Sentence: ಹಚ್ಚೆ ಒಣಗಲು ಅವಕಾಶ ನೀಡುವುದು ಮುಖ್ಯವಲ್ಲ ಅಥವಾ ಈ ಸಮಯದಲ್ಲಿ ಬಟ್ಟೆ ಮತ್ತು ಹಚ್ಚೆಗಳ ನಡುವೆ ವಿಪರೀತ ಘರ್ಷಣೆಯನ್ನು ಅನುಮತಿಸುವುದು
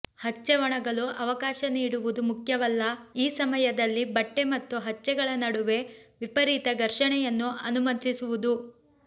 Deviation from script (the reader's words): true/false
true